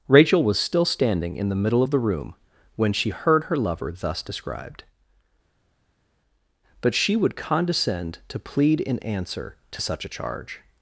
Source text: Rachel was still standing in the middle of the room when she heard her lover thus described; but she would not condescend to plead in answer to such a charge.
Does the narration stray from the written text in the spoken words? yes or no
yes